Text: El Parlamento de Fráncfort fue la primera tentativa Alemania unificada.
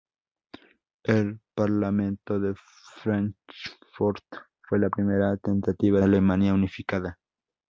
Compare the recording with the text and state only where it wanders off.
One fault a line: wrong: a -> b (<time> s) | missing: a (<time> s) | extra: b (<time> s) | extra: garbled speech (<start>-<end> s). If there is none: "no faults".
no faults